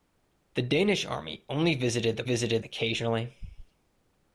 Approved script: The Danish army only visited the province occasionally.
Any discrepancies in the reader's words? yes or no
yes